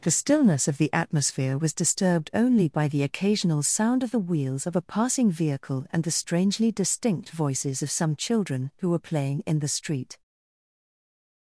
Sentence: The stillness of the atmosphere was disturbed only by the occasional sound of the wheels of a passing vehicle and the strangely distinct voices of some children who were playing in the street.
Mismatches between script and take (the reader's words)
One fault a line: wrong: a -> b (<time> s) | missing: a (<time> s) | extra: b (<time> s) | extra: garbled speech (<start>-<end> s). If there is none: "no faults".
no faults